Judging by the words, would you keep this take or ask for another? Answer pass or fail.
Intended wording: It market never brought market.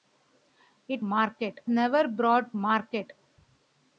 pass